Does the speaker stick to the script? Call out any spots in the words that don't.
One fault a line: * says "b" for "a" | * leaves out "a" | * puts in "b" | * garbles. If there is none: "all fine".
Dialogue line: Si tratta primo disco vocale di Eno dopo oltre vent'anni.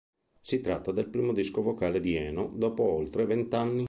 * puts in "del"